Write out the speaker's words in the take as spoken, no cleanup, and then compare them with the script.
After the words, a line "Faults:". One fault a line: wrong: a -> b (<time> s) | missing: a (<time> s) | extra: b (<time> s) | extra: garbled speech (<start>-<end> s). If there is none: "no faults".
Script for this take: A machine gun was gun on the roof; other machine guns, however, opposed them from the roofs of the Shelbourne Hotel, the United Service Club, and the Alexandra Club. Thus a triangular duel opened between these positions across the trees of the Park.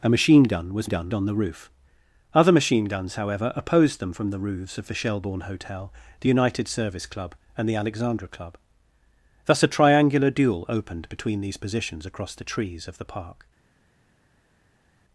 A machine gun was gun on the roof; other machine guns, however, opposed them from the roofs of the Shelbourne Hotel, the United Service Club, and the Alexandra Club. Thus a triangular duel opened between these positions across the trees of the Park.
Faults:
no faults